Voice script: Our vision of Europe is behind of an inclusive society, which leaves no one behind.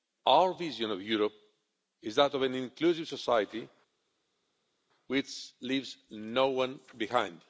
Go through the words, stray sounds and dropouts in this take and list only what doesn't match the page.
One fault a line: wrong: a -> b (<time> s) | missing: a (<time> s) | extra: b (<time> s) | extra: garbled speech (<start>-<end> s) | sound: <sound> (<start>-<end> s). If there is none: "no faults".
wrong: behind -> that (2.2 s)